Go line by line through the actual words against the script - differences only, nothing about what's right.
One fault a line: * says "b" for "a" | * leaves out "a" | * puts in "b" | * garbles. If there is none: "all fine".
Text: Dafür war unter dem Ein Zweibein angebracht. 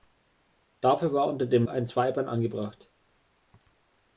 all fine